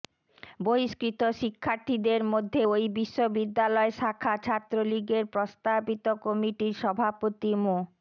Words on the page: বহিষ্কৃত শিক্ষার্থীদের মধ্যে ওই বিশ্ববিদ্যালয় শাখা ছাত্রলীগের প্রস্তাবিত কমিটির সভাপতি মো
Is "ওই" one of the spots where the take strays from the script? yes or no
no